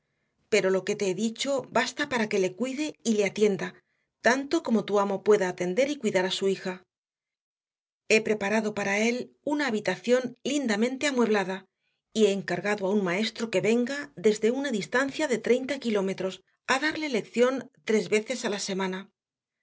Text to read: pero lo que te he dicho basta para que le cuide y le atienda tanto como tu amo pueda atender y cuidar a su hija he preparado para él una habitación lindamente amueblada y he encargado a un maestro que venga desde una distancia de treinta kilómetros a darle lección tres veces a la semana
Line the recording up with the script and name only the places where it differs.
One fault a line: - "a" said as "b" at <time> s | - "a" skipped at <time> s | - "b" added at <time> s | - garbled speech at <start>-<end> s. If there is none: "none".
none